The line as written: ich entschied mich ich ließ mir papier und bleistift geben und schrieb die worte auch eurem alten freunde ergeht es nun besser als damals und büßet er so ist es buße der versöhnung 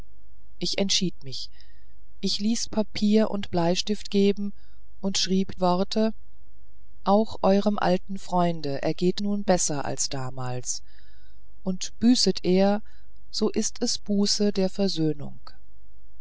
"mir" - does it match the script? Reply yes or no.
no